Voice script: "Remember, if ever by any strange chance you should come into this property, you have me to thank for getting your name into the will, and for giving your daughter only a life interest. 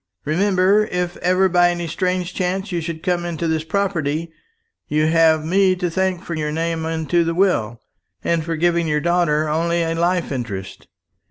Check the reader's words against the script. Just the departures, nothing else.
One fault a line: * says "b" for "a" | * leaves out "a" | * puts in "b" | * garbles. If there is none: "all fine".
* leaves out "getting"